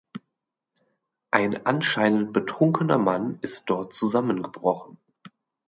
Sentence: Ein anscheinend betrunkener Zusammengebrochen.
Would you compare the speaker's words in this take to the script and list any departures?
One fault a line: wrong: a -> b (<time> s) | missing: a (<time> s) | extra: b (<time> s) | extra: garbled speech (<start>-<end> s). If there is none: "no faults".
extra: Mann ist dort (3.0 s)